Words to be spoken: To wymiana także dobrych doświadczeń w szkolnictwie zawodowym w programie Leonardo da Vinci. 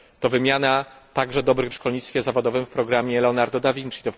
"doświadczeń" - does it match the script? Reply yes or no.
no